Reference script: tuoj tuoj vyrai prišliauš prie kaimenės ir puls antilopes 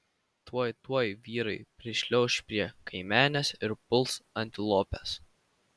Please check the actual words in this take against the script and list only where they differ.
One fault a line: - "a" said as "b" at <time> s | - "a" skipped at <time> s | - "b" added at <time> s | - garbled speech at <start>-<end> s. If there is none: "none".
none